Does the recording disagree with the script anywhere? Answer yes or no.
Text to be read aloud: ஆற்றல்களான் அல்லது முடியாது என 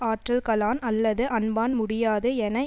yes